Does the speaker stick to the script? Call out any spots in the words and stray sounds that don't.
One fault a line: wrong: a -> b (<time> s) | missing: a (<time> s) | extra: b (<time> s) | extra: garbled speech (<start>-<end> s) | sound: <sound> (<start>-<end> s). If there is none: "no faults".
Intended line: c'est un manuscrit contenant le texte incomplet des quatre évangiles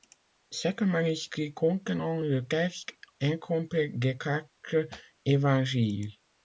no faults